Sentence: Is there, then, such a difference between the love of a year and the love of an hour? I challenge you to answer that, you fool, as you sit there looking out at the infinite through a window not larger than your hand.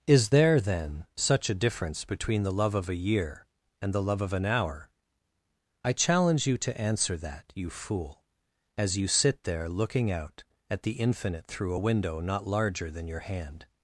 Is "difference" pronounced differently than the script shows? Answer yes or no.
no